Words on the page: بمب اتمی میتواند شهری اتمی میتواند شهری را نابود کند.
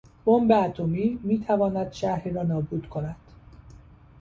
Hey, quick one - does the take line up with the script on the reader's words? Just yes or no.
no